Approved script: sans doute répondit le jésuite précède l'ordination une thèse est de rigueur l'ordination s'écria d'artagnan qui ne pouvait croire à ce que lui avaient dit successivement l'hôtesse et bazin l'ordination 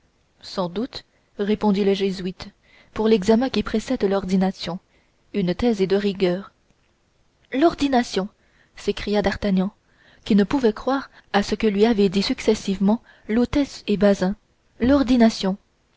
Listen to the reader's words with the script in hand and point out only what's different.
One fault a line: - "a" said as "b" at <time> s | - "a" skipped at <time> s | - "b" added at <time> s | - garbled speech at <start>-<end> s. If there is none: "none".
- "pour l'examen qui" added at 2.9 s